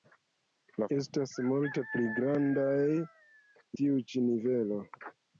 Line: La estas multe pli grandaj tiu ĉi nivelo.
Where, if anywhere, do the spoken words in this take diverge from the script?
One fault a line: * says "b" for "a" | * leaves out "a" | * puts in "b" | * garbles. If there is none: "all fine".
all fine